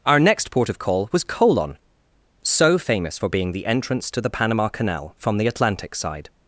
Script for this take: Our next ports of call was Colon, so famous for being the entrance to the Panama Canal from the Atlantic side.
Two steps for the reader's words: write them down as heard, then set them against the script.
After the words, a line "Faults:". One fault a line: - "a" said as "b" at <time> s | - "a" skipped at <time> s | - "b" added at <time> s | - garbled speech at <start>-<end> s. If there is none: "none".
Our next port of call was Colon, so famous for being the entrance to the Panama Canal from the Atlantic side.
Faults:
- "ports" said as "port" at 0.5 s